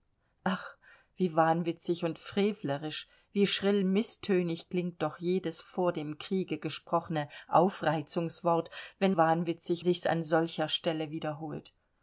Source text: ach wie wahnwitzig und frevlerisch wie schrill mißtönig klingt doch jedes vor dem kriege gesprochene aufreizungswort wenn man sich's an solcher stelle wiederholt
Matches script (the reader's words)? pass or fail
fail